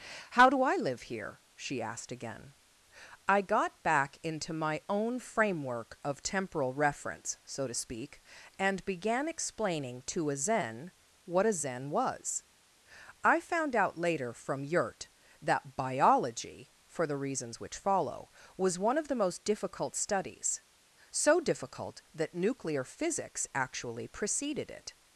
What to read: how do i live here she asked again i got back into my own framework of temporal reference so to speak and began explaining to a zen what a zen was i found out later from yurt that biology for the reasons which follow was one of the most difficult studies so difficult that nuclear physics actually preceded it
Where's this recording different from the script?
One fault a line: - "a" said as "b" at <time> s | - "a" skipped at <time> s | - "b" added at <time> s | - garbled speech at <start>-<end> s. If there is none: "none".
none